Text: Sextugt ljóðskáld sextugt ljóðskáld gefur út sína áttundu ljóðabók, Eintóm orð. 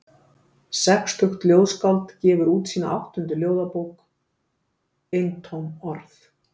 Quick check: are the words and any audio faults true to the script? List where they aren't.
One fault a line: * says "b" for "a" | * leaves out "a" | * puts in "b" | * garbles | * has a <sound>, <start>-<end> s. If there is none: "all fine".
* leaves out "sextugt ljóðskáld"